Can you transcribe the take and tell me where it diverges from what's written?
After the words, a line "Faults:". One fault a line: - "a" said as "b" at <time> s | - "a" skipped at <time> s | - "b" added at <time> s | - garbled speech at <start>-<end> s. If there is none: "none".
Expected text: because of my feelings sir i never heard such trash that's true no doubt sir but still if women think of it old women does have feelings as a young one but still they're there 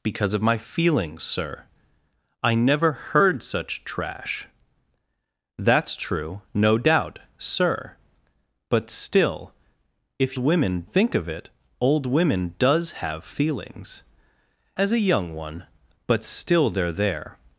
because of my feelings sir i never heard such trash that's true no doubt sir but still if women think of it old women does have feelings as a young one but still they're there
Faults:
none